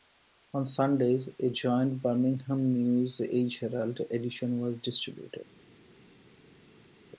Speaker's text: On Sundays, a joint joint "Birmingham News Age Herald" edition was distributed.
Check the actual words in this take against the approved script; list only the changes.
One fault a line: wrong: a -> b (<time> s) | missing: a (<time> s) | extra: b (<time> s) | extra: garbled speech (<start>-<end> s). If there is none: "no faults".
missing: joint (2.0 s)